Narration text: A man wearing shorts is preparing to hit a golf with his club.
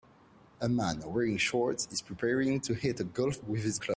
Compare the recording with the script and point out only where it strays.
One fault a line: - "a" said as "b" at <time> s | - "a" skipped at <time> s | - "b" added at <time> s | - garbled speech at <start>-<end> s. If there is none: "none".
none